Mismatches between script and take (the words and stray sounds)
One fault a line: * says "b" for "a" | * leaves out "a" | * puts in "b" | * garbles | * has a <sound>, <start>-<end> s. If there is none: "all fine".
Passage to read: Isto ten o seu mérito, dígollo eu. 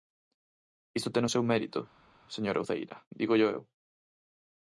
* puts in "señora Uceira"